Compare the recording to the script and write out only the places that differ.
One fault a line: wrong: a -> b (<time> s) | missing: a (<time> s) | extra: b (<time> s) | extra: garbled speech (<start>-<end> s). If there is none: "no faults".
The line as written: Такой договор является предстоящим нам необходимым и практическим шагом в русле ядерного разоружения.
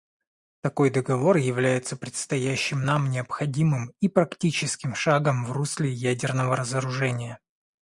no faults